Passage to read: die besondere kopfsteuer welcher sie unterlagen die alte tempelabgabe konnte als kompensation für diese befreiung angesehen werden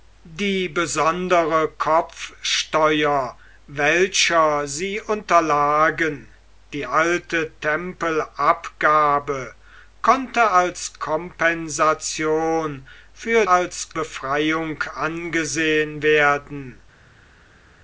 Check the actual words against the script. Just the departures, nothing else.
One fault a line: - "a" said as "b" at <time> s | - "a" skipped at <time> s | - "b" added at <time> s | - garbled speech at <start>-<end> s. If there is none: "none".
- "diese" said as "als" at 13.5 s